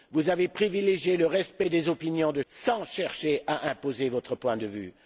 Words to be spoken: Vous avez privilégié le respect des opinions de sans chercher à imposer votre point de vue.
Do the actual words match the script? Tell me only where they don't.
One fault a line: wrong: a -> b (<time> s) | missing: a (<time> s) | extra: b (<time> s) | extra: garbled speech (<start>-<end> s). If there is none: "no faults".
no faults